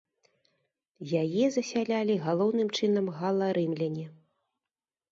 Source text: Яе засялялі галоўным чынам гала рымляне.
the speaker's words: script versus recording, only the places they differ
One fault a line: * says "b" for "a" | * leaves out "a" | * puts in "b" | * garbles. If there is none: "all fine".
all fine